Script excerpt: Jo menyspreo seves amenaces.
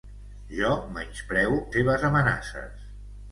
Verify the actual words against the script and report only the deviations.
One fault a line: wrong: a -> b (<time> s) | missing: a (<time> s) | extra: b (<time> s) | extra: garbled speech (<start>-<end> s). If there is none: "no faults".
no faults